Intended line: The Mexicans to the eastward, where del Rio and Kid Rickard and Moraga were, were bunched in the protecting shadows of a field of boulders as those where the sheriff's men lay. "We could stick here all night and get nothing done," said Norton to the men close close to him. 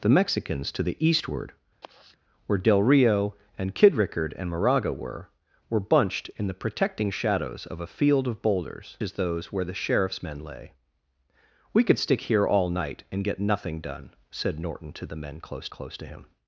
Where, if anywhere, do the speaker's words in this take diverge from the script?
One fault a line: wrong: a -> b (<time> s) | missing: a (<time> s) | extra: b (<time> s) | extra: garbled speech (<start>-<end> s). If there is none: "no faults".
no faults